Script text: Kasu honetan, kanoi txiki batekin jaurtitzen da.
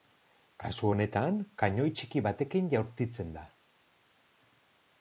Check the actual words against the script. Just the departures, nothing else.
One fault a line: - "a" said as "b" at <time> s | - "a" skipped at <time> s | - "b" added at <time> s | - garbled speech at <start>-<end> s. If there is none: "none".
none